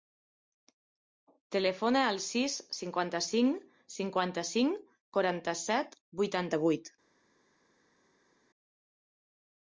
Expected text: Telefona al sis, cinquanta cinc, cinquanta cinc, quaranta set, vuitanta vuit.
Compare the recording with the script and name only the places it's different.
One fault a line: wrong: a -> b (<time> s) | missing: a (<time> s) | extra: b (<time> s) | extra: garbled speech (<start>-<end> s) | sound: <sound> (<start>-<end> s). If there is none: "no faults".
no faults